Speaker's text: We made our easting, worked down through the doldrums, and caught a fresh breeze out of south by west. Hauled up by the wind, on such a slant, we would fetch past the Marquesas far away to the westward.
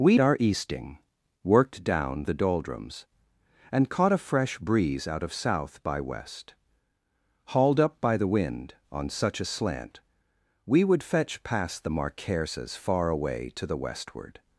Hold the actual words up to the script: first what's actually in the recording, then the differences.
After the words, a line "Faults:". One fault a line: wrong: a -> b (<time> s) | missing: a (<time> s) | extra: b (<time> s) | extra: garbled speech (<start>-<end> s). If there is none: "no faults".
We our easting, worked down the doldrums, and caught a fresh breeze out of south by west. Hauled up by the wind, on such a slant, we would fetch past the Marquesas far away to the westward.
Faults:
missing: made (0.2 s)
missing: through (2.3 s)